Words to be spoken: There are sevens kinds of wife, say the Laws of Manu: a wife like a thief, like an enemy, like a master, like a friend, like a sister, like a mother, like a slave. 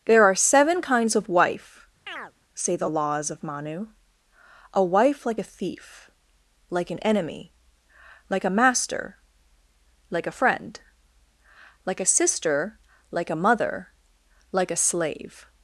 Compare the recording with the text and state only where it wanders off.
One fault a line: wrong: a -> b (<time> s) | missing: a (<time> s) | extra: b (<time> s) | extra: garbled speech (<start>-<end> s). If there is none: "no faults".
wrong: sevens -> seven (0.3 s)